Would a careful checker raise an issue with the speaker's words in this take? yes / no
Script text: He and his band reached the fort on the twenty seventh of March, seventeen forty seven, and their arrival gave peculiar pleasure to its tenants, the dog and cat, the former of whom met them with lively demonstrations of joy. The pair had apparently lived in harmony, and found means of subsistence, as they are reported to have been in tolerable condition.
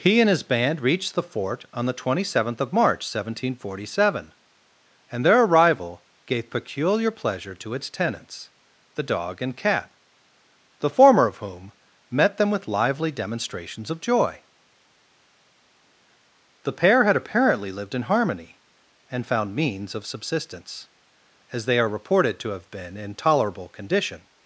no